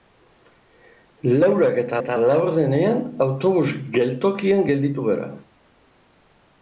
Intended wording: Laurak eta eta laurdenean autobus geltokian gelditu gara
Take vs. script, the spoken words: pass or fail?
pass